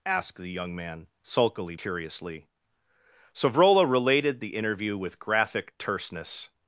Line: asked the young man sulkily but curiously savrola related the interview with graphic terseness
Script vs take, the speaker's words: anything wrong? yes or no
yes